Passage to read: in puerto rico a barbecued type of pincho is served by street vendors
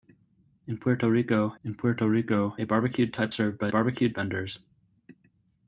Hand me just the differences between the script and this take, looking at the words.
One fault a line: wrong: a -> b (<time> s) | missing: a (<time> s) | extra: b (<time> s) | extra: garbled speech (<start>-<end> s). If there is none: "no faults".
extra: in puerto rico (1.6 s)
missing: of pincho is (3.3 s)
wrong: street -> barbecued (3.7 s)